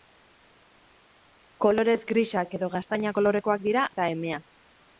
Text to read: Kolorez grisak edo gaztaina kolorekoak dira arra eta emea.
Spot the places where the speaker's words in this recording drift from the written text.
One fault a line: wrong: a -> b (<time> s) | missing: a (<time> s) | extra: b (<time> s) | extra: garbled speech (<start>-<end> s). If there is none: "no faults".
missing: arra (3.8 s)